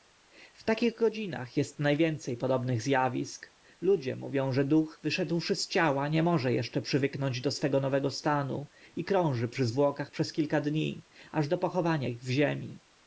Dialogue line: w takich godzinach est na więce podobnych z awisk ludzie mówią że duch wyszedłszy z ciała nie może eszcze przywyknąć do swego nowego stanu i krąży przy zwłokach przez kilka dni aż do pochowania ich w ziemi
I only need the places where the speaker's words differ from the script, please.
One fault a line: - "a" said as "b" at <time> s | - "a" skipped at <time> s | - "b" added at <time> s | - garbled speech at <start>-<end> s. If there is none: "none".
none